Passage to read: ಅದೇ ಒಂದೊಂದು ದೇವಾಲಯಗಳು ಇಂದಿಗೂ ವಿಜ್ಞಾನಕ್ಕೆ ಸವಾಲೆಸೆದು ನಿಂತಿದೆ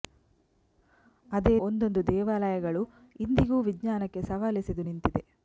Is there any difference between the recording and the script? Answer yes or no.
no